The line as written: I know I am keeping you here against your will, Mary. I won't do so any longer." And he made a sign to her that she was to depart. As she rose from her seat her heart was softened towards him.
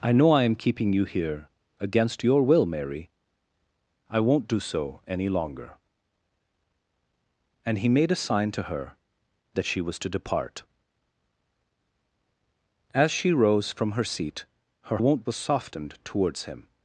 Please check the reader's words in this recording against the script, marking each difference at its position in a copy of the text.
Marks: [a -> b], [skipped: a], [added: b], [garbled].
I know I am keeping you here against your will, Mary. I won't do so any longer." And he made a sign to her that she was to depart. As she rose from her seat her [heart -> won't] was softened towards him.